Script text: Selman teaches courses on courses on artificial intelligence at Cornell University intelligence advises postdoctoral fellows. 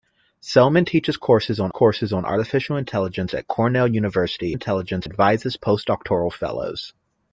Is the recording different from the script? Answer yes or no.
no